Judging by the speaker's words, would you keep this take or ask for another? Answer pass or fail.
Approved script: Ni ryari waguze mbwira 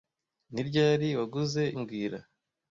pass